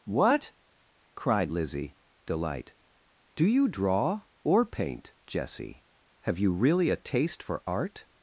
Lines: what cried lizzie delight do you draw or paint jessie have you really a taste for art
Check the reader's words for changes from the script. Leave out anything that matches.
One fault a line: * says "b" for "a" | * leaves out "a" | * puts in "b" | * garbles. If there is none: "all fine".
all fine